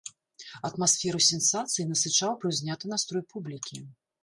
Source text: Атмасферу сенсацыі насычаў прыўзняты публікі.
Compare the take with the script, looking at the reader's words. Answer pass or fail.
fail